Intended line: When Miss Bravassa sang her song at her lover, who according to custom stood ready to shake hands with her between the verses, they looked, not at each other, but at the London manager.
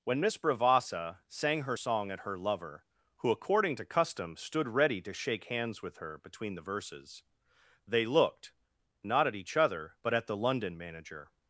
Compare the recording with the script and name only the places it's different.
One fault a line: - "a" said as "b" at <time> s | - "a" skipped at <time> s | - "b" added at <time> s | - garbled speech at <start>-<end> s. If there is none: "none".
none